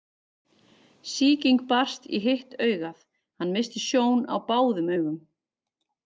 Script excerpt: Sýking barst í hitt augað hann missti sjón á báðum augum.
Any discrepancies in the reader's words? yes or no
no